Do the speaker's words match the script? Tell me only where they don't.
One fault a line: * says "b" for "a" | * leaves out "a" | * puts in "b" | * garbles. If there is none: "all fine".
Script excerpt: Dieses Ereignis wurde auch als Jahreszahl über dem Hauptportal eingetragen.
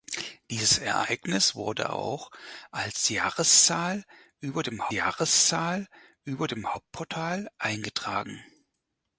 * puts in "Jahreszahl über dem"